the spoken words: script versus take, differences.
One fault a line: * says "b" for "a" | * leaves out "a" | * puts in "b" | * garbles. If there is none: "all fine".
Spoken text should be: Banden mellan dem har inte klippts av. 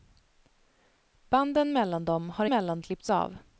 * says "mellan" for "inte"